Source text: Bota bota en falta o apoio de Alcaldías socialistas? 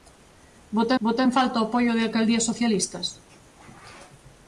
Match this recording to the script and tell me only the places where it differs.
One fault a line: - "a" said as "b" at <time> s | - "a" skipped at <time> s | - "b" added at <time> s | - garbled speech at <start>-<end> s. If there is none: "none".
none